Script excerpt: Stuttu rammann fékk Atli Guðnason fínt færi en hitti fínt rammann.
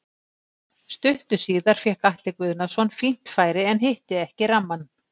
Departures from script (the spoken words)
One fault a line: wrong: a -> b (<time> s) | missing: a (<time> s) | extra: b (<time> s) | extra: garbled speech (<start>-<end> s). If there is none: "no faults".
wrong: rammann -> síðar (1.4 s)
wrong: fínt -> ekki (4.3 s)